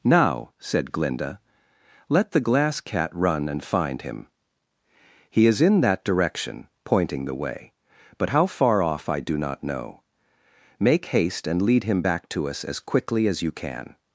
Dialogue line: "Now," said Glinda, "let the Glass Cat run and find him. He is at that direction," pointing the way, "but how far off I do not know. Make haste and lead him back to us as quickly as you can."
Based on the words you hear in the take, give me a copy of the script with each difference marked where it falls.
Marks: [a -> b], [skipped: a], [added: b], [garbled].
"Now," said Glinda, "let the Glass Cat run and find him. He is [at -> in] that direction," pointing the way, "but how far off I do not know. Make haste and lead him back to us as quickly as you can."